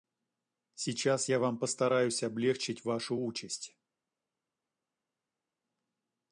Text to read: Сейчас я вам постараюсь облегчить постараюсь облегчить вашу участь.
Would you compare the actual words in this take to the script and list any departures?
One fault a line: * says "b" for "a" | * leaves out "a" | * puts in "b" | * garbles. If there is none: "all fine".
* leaves out "постараюсь облегчить"